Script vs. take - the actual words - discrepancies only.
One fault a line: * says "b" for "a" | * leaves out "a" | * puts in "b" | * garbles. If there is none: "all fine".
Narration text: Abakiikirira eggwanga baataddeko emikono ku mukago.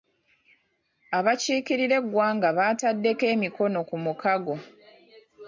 all fine